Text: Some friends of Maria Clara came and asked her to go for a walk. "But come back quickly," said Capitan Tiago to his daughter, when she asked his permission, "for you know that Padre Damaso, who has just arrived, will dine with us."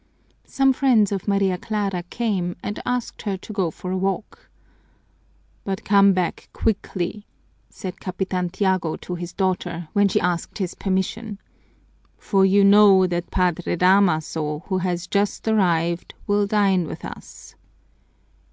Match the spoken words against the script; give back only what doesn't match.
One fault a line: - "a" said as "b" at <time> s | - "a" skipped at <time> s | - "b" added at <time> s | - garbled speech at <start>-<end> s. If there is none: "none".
none